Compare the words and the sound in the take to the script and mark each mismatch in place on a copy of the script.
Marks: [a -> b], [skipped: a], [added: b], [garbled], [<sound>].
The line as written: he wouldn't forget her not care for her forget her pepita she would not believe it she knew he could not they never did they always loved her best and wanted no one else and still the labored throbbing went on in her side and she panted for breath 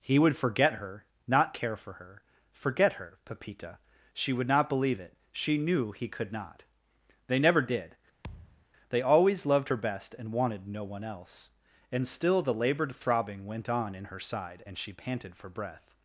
he [wouldn't -> would] forget her not care for her forget her pepita she would not believe it she knew he could not they never did [thud] they always loved her best and wanted no one else and still the labored throbbing went on in her side and she panted for breath